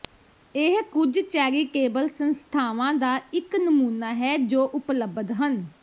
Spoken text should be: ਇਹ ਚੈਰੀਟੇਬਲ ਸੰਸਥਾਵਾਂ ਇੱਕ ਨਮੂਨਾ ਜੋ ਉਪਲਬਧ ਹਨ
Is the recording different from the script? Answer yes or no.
yes